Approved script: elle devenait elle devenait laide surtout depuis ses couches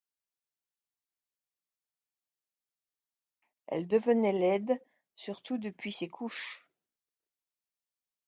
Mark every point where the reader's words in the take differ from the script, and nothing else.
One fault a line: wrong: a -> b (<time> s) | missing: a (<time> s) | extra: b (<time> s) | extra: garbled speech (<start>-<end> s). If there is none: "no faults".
missing: elle devenait (4.3 s)